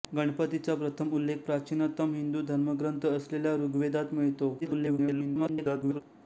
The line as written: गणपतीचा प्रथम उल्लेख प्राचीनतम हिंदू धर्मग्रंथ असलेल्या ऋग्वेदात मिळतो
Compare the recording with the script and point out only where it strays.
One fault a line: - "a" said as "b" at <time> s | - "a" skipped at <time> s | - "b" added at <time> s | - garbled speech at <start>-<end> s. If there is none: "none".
- garbled speech at 4.6-6.0 s